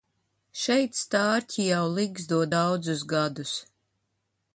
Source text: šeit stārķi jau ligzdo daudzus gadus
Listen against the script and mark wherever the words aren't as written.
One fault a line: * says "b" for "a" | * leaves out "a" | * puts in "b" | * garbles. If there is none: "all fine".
all fine